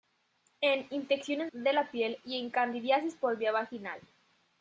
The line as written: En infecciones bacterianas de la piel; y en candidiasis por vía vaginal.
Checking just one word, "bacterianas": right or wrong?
wrong